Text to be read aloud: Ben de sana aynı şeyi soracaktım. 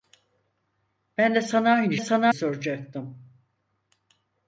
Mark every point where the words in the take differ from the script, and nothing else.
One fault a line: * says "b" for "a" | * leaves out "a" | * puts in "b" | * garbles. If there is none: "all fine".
* says "sana" for "şeyi"